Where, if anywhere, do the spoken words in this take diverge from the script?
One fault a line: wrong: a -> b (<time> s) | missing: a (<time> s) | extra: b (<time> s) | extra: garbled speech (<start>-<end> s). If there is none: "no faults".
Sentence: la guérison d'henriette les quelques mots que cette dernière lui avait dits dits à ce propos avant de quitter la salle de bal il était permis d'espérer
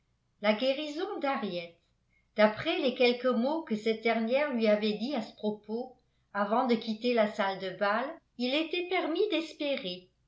extra: d'après (2.4 s)
missing: dits (5.1 s)